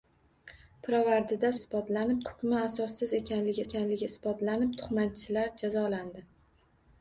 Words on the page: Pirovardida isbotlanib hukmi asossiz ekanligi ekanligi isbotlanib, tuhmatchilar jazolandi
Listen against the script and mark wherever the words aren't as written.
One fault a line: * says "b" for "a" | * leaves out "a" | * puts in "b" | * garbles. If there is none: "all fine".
all fine